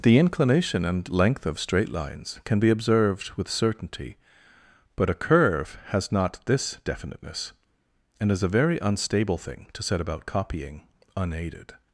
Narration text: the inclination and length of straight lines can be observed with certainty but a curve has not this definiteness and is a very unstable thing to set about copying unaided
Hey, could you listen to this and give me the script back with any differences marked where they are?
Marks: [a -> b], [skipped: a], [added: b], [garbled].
the inclination and length of straight lines can be observed with certainty but a curve has not this definiteness and is a very unstable thing to set about copying unaided